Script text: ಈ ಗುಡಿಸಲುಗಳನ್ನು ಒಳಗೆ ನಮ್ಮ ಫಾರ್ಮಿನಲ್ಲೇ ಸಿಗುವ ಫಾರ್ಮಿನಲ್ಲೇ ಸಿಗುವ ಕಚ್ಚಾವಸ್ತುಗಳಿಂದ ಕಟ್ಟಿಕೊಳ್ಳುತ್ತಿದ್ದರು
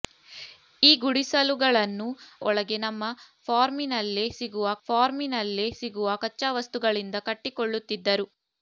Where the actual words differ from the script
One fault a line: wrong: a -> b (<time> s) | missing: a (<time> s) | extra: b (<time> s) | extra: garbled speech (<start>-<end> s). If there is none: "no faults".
no faults